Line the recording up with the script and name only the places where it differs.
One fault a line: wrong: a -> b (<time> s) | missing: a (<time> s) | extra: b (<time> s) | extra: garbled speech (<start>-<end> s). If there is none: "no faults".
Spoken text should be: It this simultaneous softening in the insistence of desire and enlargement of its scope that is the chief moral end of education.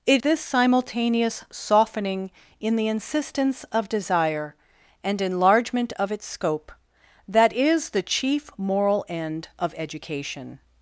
no faults